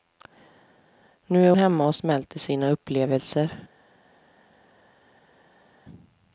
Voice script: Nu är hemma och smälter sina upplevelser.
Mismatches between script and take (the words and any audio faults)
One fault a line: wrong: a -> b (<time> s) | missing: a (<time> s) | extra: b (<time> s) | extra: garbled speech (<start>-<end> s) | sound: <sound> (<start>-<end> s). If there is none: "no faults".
no faults